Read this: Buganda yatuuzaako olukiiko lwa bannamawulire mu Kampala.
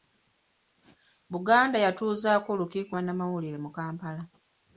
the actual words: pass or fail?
fail